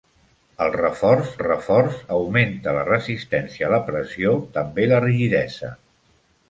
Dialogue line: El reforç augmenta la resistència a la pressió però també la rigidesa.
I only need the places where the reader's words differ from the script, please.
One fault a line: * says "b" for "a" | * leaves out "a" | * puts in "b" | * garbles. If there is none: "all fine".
* puts in "reforç"
* leaves out "però"